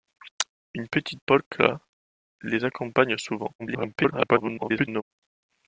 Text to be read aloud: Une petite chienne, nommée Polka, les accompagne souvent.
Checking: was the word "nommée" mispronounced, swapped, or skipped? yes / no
yes